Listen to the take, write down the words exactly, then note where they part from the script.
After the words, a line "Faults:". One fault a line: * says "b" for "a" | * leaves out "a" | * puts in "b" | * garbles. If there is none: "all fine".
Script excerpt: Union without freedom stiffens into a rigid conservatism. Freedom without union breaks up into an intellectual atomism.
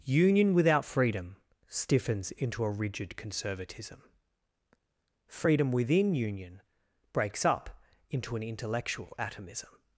Union without freedom stiffens into a rigid conservatism. Freedom within union breaks up into an intellectual atomism.
Faults:
* says "within" for "without"